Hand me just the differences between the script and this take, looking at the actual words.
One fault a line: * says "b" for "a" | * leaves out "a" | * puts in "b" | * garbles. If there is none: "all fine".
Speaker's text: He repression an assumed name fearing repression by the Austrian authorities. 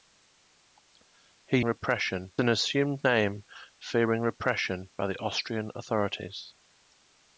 all fine